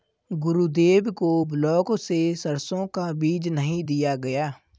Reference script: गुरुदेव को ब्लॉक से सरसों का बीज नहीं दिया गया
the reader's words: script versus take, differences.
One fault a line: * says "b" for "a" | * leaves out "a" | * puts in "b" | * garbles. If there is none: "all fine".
all fine